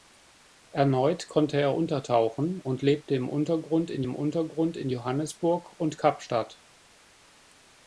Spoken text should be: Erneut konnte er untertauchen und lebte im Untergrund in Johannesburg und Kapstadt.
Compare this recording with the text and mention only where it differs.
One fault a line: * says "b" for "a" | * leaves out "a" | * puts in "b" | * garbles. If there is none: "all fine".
* puts in "im Untergrund in"